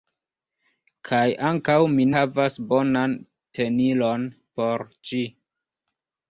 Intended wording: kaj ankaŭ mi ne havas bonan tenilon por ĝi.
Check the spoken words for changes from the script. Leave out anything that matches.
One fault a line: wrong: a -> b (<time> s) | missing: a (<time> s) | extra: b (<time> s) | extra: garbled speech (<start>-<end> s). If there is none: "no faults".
missing: ne (2.1 s)